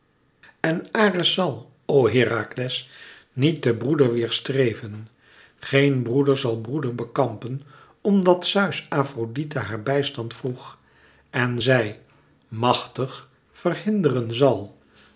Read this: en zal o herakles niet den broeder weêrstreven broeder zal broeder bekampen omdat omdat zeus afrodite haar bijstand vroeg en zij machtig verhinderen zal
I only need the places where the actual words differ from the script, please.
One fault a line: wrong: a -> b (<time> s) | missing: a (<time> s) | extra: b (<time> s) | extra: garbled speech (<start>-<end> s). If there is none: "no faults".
extra: ares (0.9 s)
extra: geen (5.6 s)
missing: omdat (8.4 s)